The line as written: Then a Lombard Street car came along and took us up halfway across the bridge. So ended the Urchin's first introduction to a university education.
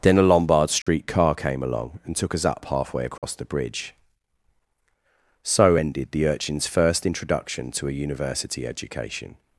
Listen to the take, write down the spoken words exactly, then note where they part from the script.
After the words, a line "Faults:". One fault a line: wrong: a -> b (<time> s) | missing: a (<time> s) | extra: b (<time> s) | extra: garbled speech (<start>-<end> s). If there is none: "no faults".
Then a Lombard Street car came along and took us up halfway across the bridge. So ended the Urchin's first introduction to a university education.
Faults:
no faults